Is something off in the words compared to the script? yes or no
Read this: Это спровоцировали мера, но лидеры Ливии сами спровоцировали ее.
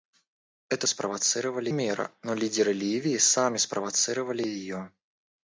no